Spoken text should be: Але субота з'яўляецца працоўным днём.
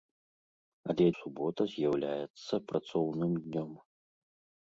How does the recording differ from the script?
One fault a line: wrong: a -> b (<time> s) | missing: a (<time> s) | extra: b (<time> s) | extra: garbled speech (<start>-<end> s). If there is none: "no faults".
no faults